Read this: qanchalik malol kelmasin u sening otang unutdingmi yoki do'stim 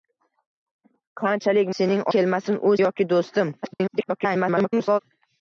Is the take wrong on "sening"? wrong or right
wrong